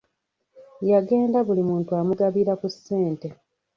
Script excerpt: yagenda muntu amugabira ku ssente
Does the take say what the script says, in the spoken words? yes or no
no